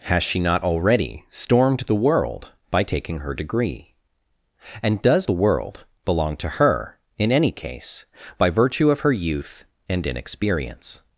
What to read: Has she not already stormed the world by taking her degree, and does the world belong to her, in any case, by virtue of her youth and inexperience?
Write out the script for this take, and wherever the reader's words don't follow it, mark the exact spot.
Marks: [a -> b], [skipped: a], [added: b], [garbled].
Has she not already stormed the world by taking her degree, and does the world belong to her, in any case, by virtue of her youth and inexperience?